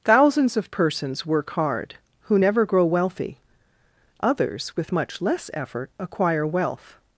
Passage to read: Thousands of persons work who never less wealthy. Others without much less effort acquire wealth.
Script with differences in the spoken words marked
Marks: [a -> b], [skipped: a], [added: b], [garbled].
Thousands of persons work [added: hard] who never [less -> grow] wealthy. Others [without -> with] much less effort acquire wealth.